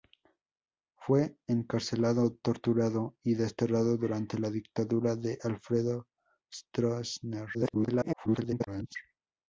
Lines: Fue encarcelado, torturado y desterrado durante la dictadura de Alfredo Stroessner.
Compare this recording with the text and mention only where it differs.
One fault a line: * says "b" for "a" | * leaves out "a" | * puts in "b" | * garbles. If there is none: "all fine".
* garbles